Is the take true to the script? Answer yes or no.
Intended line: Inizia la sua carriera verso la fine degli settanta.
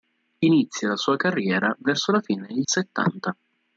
yes